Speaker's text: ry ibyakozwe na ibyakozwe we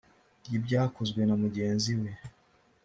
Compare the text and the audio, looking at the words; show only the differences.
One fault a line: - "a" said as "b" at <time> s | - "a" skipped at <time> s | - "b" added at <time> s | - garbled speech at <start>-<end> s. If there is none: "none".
- "ibyakozwe" said as "mugenzi" at 1.4 s